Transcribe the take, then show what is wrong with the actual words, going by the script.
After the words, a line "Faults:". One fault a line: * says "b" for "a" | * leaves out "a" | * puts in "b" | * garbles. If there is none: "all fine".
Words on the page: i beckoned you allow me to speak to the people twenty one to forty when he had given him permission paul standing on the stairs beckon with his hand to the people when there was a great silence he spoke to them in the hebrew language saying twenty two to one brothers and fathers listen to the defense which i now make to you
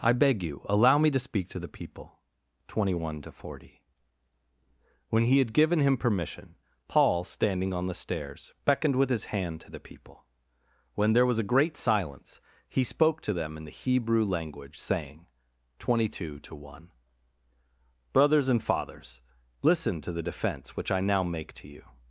i beg you allow me to speak to the people twenty one to forty when he had given him permission paul standing on the stairs beckoned with his hand to the people when there was a great silence he spoke to them in the hebrew language saying twenty two to one brothers and fathers listen to the defense which i now make to you
Faults:
* says "beg" for "beckoned"
* says "beckoned" for "beckon"